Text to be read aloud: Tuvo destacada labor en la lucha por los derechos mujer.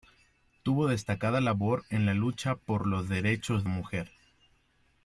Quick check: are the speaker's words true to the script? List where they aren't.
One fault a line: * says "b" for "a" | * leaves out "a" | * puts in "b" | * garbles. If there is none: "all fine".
all fine